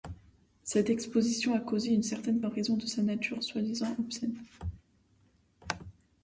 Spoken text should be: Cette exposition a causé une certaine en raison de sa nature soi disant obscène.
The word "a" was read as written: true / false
true